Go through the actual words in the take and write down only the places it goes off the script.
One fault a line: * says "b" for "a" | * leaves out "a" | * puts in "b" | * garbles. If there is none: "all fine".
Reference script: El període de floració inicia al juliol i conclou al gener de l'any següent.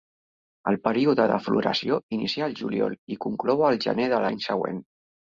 all fine